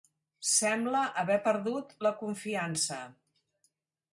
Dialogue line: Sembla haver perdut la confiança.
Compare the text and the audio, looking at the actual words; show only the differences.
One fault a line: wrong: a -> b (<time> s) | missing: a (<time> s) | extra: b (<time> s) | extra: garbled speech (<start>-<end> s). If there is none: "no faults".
no faults